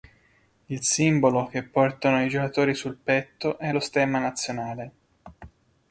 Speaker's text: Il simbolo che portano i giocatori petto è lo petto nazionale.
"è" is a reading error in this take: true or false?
false